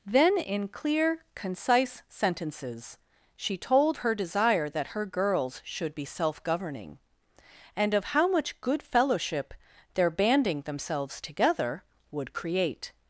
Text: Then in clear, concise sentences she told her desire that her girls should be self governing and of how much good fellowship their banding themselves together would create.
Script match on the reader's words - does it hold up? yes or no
yes